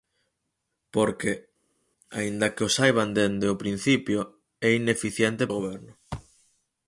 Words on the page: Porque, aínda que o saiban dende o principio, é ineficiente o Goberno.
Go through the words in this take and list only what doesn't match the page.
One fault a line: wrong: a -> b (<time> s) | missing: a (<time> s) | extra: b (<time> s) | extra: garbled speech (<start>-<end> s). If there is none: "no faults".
no faults